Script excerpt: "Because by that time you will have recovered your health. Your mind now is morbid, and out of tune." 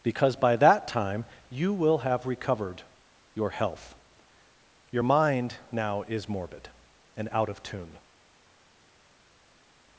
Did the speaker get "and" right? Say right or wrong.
right